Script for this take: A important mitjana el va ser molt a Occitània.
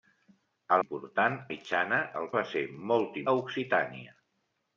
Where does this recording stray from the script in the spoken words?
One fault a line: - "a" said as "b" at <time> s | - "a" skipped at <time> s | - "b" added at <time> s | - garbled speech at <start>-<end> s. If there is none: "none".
none